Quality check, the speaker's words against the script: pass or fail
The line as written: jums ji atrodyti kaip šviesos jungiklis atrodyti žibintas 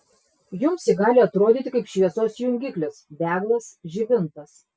fail